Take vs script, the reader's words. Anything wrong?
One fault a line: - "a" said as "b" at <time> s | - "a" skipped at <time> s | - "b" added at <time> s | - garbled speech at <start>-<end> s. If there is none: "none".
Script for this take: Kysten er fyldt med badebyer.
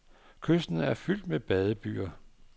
none